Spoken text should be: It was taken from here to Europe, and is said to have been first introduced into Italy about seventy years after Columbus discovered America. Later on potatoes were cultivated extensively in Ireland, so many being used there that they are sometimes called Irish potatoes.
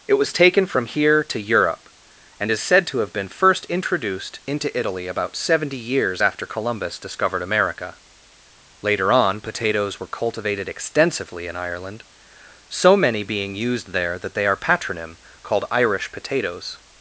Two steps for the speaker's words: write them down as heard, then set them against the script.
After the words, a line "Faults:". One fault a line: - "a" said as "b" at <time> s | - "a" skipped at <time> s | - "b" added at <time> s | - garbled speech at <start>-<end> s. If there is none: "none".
It was taken from here to Europe, and is said to have been first introduced into Italy about seventy years after Columbus discovered America. Later on potatoes were cultivated extensively in Ireland, so many being used there that they are patronym called Irish potatoes.
Faults:
- "sometimes" said as "patronym" at 14.6 s